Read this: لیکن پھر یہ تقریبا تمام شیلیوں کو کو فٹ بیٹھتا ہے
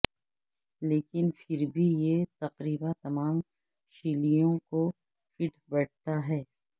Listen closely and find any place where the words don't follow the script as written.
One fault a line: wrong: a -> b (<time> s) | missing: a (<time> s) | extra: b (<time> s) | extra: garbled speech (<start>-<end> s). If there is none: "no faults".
extra: بھی (1.7 s)
missing: کو (4.9 s)